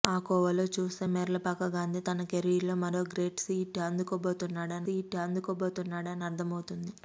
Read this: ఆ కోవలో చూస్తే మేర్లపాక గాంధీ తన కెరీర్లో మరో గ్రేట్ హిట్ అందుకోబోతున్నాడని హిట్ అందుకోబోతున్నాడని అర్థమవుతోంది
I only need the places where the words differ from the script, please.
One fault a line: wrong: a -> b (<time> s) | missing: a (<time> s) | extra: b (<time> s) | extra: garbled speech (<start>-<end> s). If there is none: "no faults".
no faults